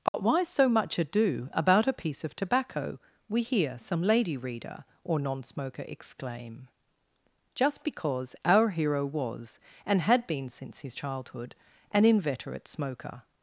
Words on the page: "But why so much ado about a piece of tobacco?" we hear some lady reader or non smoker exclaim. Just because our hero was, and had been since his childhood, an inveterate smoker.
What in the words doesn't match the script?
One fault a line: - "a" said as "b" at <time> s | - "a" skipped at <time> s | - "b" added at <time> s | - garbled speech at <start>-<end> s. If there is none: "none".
none